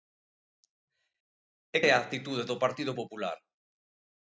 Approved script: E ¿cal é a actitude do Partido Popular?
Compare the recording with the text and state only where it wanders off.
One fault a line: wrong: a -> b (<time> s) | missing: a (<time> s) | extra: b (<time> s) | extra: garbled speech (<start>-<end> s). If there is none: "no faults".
missing: cal (1.8 s)